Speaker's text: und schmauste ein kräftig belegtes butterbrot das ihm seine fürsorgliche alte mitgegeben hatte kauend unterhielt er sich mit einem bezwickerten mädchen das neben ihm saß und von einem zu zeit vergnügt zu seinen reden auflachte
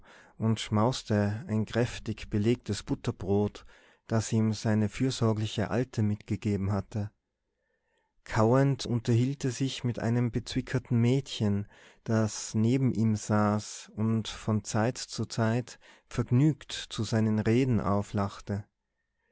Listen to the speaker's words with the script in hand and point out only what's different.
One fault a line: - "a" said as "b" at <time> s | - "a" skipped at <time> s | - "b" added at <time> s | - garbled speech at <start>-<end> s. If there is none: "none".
- "einem" said as "zeit" at 14.6 s